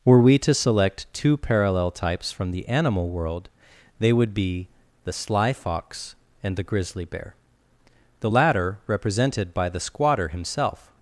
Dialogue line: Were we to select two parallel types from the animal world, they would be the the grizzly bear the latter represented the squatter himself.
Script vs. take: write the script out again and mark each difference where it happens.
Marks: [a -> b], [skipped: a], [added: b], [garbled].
Were we to select two parallel types from the animal world, they would be the [added: sly fox and] the grizzly bear the latter represented [added: by] the squatter himself.